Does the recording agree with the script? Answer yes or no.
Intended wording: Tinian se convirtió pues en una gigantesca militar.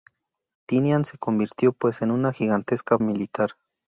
yes